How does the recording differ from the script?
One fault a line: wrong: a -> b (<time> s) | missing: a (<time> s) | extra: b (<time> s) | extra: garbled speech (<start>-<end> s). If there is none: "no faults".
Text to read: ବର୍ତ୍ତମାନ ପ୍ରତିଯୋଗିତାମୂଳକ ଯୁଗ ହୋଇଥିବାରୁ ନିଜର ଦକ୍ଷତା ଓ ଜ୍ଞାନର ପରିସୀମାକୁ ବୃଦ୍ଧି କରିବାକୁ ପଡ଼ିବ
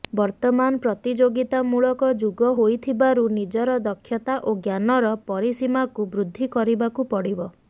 no faults